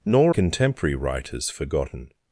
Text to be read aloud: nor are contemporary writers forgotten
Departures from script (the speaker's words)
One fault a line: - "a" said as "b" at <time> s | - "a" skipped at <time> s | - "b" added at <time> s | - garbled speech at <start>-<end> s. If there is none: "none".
- "are" skipped at 0.3 s